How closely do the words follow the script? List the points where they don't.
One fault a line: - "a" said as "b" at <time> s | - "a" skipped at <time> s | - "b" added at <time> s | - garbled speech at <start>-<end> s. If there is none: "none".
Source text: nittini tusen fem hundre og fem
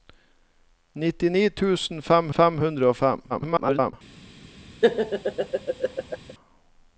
- "fem" added at 2.4 s
- garbled speech at 3.3-3.9 s